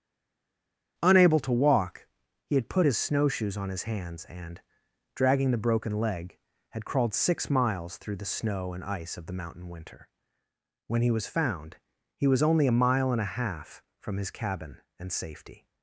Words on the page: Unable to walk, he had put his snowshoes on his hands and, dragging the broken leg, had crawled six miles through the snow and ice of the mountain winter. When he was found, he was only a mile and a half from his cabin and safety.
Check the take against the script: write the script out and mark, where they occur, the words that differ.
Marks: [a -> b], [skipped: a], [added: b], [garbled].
Unable to walk, he had put his snowshoes on his hands and, dragging the broken leg, had crawled six miles through the snow and ice of the mountain winter. When he was found, he was only a mile and a half from his cabin and safety.